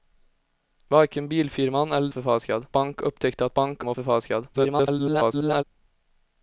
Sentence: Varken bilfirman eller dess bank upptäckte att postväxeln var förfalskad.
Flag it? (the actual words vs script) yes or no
yes